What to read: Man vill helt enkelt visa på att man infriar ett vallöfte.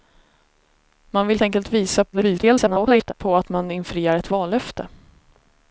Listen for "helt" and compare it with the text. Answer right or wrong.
wrong